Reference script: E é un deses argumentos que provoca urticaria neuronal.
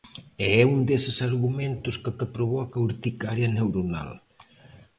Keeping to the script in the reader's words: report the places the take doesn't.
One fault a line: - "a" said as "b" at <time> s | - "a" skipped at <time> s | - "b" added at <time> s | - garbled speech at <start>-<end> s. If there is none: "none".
- "que" added at 2.2 s